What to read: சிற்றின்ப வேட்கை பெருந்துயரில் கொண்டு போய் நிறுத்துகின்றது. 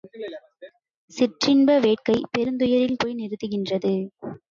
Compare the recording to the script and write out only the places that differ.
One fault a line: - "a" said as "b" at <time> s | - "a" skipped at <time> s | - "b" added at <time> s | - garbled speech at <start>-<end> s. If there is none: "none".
- "கொண்டு" skipped at 3.0 s